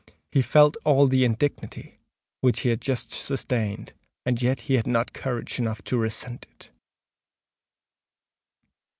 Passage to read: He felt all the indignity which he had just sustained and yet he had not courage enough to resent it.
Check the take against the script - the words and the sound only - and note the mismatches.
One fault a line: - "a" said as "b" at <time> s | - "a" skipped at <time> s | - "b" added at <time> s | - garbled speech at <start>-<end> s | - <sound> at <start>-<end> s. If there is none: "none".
none